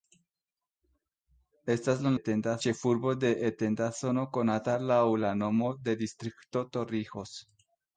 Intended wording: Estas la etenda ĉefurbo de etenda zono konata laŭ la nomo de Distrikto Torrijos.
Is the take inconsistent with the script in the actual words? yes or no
no